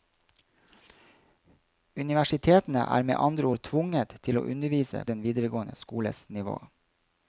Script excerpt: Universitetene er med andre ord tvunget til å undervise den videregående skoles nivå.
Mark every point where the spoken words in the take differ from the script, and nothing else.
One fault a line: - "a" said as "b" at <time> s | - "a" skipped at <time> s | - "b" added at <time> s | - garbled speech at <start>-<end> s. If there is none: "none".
none